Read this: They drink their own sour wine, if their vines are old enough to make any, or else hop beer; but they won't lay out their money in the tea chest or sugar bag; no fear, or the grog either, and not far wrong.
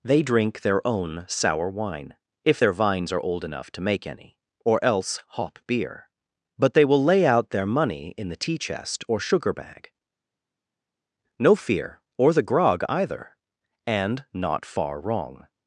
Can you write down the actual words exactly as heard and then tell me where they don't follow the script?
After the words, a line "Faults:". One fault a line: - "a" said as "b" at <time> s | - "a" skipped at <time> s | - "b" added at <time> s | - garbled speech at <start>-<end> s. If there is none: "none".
They drink their own sour wine, if their vines are old enough to make any, or else hop beer; but they will lay out their money in the tea chest or sugar bag; no fear, or the grog either, and not far wrong.
Faults:
- "won't" said as "will" at 6.8 s